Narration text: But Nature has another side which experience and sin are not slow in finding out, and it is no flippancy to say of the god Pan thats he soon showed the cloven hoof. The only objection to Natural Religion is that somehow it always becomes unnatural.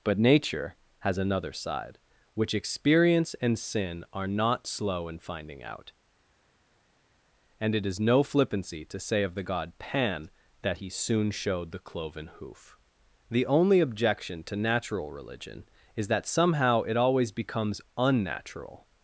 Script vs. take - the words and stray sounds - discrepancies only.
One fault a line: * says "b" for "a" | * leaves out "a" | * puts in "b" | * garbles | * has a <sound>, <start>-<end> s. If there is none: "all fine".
* says "that" for "thats"